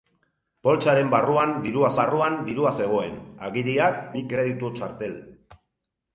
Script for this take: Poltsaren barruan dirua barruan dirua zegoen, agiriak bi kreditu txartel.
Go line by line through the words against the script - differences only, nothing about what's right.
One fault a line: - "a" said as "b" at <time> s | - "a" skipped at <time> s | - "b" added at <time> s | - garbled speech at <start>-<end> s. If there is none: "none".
none